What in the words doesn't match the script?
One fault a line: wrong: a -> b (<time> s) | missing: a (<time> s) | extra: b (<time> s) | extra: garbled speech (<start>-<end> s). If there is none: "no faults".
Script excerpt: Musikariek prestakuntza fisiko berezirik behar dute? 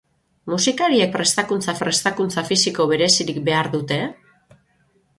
extra: prestakuntza (1.8 s)